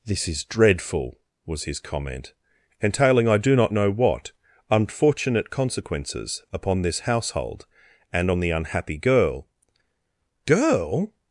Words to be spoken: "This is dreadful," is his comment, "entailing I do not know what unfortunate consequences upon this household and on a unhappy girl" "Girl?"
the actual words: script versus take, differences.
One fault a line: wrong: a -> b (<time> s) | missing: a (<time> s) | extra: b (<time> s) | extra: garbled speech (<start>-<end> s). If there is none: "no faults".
wrong: is -> was (1.4 s)
wrong: a -> the (8.4 s)